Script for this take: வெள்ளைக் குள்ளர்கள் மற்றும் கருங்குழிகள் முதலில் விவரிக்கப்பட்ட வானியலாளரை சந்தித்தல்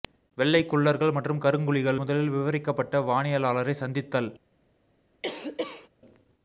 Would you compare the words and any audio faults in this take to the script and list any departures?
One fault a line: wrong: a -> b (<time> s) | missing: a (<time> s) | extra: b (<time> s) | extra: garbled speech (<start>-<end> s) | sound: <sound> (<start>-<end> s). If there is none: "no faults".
sound: cough (5.2-5.9 s)